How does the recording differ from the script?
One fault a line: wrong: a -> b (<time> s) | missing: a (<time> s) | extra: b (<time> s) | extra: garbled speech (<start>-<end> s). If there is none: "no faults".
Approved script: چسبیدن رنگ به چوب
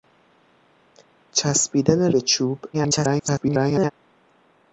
missing: رنگ (2.1 s)
extra: garbled speech (2.7-3.9 s)